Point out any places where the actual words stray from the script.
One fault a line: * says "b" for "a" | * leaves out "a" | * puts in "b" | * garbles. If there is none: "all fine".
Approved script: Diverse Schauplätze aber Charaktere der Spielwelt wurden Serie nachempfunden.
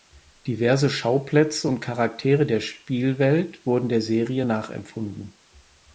* says "und" for "aber"
* puts in "der"